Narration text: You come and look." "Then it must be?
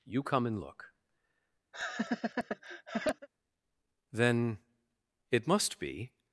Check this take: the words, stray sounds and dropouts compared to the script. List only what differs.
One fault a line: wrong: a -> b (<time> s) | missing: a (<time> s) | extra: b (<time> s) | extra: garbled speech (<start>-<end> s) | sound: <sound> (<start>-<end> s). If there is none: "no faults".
sound: laugh (1.7-3.3 s)